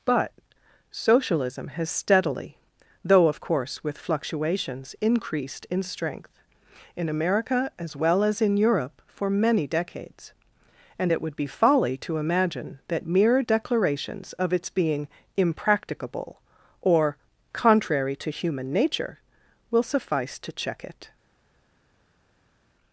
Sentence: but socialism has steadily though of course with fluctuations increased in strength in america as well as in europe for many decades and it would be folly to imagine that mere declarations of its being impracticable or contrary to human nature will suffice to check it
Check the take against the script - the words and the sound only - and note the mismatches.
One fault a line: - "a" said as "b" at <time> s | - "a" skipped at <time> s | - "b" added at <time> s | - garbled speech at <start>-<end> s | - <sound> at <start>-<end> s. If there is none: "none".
none